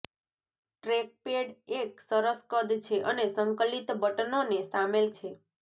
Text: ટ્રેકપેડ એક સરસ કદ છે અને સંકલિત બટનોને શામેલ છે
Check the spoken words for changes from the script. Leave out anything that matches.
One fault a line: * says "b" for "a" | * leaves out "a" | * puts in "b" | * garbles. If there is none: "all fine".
all fine